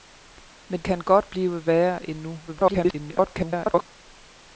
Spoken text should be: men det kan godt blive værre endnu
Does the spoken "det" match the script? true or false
false